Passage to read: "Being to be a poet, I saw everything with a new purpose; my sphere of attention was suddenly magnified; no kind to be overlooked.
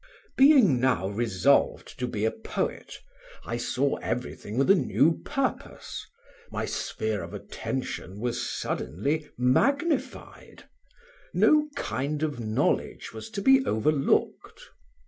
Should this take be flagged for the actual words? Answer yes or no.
yes